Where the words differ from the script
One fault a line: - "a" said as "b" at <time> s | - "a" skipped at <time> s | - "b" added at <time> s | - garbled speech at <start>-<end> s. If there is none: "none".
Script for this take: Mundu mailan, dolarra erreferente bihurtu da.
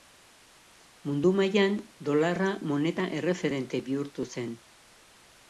- "moneta" added at 2.7 s
- "da" said as "zen" at 4.3 s